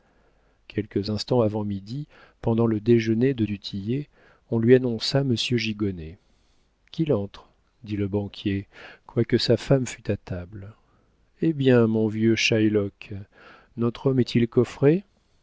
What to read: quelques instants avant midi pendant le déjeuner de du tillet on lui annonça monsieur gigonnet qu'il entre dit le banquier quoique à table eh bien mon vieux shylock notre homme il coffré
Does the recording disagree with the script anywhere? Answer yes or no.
yes